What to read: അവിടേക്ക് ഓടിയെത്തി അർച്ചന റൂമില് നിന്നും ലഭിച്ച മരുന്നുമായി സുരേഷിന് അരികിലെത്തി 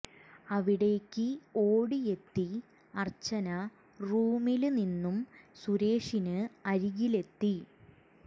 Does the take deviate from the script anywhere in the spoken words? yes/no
yes